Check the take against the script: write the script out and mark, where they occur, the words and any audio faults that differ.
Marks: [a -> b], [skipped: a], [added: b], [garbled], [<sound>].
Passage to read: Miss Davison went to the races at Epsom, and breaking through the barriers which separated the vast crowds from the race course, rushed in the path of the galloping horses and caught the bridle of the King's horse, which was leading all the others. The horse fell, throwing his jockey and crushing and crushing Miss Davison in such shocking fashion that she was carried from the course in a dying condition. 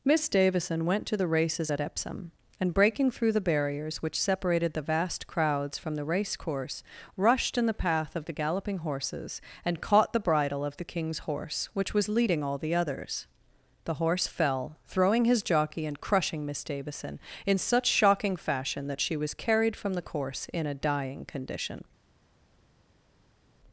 Miss Davison went to the races at Epsom, and breaking through the barriers which separated the vast crowds from the race course, rushed in the path of the galloping horses and caught the bridle of the King's horse, which was leading all the others. The horse fell, throwing his jockey and crushing [skipped: and crushing] Miss Davison in such shocking fashion that she was carried from the course in a dying condition.